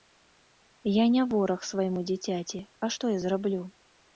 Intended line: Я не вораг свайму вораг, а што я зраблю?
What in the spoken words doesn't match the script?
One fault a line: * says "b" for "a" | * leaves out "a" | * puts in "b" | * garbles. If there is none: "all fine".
* says "дзіцяці" for "вораг"